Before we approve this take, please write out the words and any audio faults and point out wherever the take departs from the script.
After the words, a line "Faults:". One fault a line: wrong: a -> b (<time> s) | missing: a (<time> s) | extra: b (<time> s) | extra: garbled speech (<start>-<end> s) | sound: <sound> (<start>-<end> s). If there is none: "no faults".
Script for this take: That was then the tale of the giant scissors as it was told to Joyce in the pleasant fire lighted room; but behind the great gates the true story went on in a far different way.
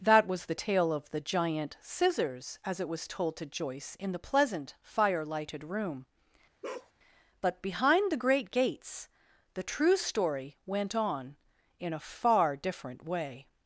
That was the tale of the giant scissors as it was told to Joyce in the pleasant fire lighted room; but behind the great gates the true story went on in a far different way.
Faults:
missing: then (0.5 s)
sound: bark (6.6-6.9 s)